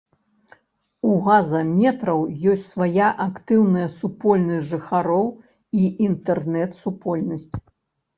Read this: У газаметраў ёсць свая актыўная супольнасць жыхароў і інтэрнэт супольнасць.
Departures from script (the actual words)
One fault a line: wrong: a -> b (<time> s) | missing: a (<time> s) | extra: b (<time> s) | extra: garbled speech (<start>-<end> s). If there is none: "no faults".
no faults